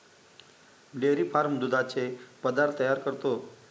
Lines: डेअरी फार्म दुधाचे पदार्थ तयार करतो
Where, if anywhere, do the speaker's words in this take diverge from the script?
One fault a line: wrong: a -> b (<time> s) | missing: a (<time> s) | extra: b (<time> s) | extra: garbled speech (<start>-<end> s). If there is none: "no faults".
no faults